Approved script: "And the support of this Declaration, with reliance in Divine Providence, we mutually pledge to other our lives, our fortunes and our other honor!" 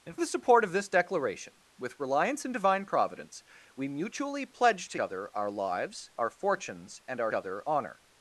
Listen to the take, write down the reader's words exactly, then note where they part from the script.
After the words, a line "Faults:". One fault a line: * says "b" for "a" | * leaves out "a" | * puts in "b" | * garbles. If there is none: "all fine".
"And the support of this Declaration, with reliance in Divine Providence, we mutually pledge to other our lives, our fortunes and our other honor!"
Faults:
all fine